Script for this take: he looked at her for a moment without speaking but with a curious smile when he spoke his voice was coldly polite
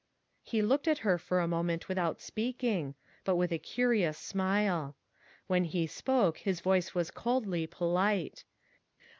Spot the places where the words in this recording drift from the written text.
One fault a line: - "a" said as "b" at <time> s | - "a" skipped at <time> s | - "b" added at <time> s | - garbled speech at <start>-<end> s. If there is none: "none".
none